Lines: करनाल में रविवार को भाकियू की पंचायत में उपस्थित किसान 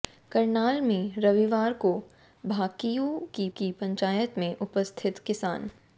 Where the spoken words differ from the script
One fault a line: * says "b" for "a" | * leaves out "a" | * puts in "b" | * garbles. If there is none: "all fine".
* puts in "की"